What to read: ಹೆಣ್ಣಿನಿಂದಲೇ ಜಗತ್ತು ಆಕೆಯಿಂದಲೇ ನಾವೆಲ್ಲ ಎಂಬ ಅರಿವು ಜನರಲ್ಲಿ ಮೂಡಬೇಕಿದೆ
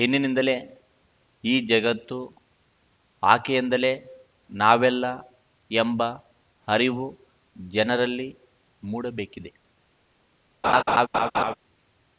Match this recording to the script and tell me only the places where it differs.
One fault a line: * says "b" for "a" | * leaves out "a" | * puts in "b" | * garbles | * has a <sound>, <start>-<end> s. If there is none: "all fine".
* puts in "ಈ"
* has a laugh, 10.6-11.5 s